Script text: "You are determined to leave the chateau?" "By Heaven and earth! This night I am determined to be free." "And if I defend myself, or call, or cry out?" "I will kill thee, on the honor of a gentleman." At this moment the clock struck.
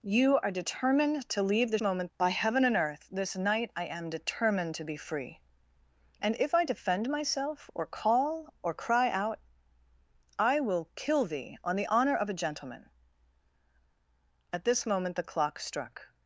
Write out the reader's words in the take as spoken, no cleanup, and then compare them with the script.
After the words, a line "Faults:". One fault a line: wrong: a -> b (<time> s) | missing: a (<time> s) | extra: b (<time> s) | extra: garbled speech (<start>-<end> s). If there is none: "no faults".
"You are determined to leave the moment?" "By Heaven and earth! This night I am determined to be free." "And if I defend myself, or call, or cry out?" "I will kill thee, on the honor of a gentleman." At this moment the clock struck.
Faults:
wrong: chateau -> moment (1.8 s)